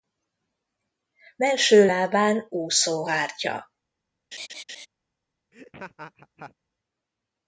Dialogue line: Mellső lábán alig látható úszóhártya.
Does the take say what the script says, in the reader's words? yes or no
no